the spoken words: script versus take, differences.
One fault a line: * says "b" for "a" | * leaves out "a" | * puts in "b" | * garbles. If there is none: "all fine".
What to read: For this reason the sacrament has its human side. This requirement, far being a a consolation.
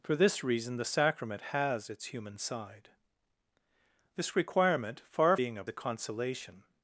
all fine